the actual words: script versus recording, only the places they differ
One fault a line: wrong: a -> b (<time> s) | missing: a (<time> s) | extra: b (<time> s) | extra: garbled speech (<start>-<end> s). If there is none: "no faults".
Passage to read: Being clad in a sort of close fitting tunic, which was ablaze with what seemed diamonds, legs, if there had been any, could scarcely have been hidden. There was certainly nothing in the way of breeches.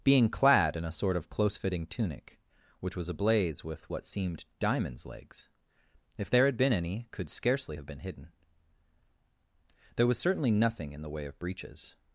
no faults